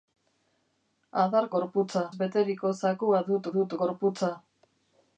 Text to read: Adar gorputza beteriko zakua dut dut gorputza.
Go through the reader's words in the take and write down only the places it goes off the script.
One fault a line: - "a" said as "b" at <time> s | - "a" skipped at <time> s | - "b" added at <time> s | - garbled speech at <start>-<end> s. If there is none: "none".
none